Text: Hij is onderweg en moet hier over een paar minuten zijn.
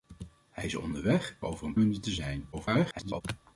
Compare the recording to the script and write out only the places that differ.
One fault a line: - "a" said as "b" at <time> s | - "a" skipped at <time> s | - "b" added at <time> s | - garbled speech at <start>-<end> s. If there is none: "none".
- "en moet hier" skipped at 1.4 s
- "paar" skipped at 1.8 s
- garbled speech at 2.5-3.2 s